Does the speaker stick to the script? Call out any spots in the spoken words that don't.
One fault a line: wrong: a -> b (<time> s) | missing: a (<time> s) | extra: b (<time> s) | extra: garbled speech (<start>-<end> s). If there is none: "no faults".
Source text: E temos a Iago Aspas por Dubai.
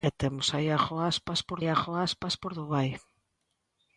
extra: Iago Aspas por (1.6 s)